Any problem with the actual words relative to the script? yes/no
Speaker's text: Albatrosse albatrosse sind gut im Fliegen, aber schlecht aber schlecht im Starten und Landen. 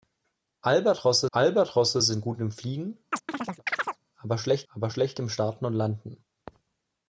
no